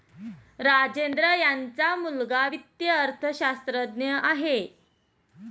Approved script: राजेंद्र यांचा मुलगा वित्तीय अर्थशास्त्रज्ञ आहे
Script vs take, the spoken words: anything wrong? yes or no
no